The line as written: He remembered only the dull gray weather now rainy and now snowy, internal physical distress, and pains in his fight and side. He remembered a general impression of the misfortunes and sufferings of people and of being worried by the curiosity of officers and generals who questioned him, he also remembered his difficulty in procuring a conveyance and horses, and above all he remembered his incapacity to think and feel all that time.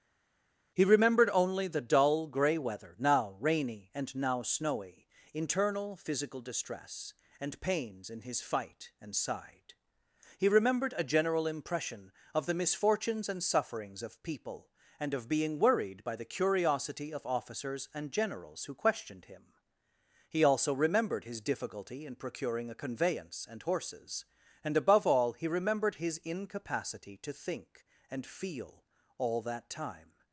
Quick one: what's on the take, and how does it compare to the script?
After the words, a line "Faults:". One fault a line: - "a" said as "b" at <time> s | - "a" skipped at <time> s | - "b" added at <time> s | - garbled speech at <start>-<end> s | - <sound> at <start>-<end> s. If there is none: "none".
He remembered only the dull gray weather now rainy and now snowy, internal physical distress, and pains in his fight and side. He remembered a general impression of the misfortunes and sufferings of people and of being worried by the curiosity of officers and generals who questioned him, he also remembered his difficulty in procuring a conveyance and horses, and above all he remembered his incapacity to think and feel all that time.
Faults:
none